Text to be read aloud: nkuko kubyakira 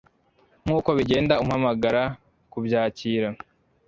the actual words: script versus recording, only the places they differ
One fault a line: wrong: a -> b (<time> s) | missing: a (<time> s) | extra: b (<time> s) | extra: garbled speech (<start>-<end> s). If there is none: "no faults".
extra: bigenda umpamagara (1.0 s)